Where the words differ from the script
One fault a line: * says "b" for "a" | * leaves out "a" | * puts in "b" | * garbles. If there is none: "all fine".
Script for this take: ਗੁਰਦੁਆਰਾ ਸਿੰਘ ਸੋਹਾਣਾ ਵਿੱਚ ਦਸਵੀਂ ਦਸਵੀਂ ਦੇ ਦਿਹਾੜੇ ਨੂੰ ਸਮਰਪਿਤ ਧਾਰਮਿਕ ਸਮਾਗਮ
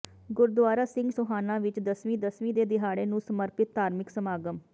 all fine